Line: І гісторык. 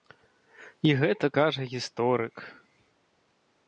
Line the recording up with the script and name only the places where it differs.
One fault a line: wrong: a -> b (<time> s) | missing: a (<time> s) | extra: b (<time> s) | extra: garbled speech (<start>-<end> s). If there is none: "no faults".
extra: гэта кажа (1.0 s)